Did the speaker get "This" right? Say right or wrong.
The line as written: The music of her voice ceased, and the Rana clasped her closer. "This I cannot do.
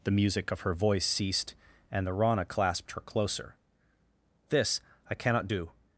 right